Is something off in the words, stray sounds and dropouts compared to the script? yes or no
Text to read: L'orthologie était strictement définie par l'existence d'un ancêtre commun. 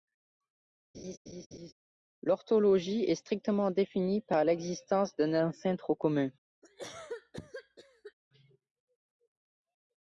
yes